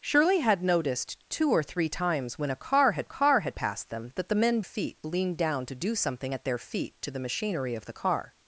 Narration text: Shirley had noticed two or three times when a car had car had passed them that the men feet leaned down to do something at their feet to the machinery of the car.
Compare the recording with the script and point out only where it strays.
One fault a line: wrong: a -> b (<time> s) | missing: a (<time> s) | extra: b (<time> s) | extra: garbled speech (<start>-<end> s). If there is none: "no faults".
no faults